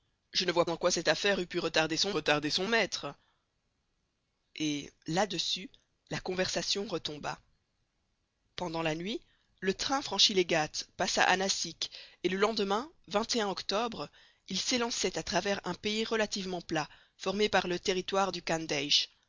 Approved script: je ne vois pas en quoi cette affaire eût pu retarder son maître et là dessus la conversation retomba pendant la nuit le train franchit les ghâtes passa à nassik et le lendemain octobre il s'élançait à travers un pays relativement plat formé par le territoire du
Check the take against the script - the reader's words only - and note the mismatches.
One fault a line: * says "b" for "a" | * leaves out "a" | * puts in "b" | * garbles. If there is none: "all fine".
* leaves out "pas"
* puts in "retarder son"